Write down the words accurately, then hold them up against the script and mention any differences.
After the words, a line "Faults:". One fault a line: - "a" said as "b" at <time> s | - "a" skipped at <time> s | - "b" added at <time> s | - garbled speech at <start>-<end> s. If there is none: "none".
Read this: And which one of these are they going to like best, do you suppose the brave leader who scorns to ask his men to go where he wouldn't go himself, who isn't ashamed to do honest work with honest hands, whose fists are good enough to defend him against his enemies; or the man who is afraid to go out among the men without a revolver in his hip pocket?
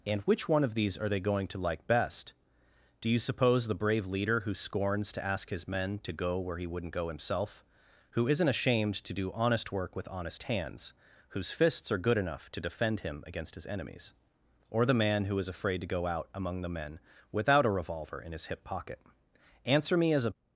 And which one of these are they going to like best, do you suppose the brave leader who scorns to ask his men to go where he wouldn't go himself, who isn't ashamed to do honest work with honest hands, whose fists are good enough to defend him against his enemies; or the man who is afraid to go out among the men without a revolver in his hip pocket? Answer me as a
Faults:
- "Answer me as a" added at 19.6 s